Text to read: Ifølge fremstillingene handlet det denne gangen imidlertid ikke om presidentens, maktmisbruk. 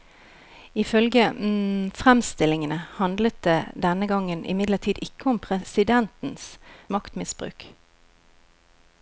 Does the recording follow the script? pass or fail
pass